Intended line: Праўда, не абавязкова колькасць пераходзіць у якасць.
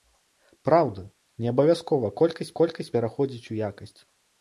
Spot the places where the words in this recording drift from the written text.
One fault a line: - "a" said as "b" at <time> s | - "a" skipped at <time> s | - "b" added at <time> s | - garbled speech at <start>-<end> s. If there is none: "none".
- "колькасць" added at 2.6 s